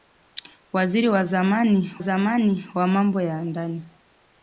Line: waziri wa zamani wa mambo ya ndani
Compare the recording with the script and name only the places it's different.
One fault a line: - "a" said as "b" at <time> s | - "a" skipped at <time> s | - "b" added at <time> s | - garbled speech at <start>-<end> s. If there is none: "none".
- "zamani" added at 2.0 s